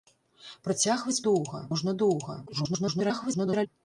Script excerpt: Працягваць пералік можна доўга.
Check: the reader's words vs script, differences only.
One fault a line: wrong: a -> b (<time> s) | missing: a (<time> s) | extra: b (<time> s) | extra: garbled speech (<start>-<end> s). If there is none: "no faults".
wrong: пералік -> доўга (1.3 s)
extra: garbled speech (2.5-3.7 s)